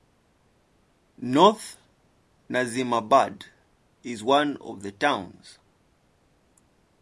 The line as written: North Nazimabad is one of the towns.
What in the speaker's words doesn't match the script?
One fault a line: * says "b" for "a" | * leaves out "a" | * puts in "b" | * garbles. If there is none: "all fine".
all fine